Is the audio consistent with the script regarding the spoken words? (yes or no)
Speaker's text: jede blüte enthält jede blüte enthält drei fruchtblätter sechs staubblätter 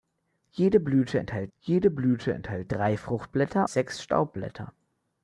yes